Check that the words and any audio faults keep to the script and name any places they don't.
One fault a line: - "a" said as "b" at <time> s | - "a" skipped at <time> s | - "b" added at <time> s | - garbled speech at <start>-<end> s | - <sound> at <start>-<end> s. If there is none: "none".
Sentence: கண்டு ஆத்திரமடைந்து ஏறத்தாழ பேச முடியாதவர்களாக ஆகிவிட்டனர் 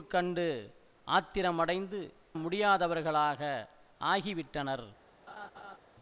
- "ஏறத்தாழ பேச" skipped at 2.0 s
- laugh at 5.3-5.8 s